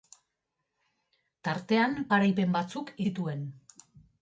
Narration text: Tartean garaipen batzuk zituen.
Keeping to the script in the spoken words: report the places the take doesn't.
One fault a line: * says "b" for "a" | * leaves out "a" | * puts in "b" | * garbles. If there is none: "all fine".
all fine